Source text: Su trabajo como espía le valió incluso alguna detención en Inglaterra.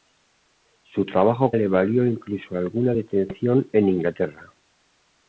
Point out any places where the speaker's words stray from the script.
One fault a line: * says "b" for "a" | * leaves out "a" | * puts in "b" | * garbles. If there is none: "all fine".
* leaves out "como espía"